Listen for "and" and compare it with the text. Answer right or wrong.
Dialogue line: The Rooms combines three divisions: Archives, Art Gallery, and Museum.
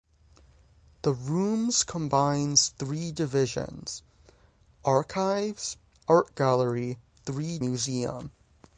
wrong